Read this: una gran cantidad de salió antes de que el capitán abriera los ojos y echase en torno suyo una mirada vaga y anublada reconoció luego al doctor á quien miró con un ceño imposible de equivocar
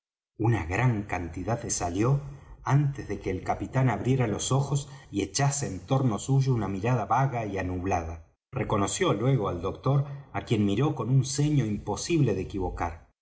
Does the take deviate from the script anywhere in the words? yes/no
no